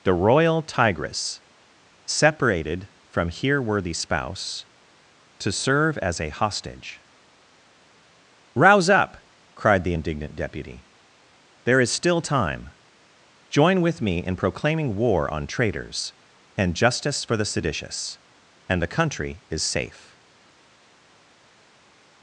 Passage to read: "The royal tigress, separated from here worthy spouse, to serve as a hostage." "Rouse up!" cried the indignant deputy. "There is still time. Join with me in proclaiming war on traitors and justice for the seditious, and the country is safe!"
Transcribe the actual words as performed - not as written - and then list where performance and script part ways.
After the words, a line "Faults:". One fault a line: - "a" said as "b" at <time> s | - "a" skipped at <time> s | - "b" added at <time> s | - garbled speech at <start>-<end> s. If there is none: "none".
"The royal tigress, separated from here worthy spouse, to serve as a hostage." "Rouse up!" cried the indignant deputy. "There is still time. Join with me in proclaiming war on traitors and justice for the seditious, and the country is safe!"
Faults:
none